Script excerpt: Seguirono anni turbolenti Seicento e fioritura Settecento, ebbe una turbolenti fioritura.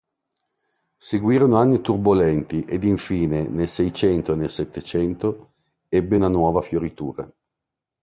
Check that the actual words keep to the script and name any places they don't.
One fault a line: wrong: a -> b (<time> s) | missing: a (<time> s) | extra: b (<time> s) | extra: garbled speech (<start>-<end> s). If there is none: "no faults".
extra: ed infine nel (2.7 s)
wrong: fioritura -> nel (4.3 s)
wrong: turbolenti -> nuova (6.3 s)